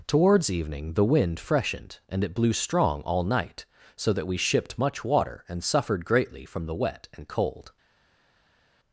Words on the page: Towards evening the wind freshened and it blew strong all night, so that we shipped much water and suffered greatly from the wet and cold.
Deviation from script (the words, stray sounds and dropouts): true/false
false